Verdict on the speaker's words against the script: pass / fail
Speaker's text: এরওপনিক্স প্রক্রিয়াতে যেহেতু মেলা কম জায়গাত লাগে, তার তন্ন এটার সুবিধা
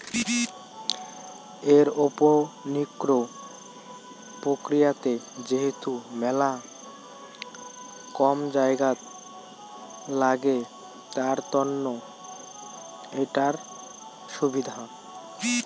pass